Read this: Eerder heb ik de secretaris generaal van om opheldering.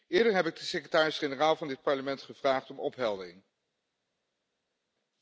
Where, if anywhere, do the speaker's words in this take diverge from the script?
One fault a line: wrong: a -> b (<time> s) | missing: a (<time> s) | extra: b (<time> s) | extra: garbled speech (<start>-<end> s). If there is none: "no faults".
extra: dit Parlement gevraagd (1.7 s)